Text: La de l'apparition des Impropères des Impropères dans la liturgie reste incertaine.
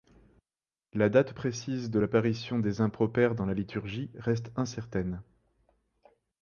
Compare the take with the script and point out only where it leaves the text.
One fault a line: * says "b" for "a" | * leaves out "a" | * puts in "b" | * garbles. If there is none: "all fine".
* puts in "date précise"
* leaves out "des Impropères"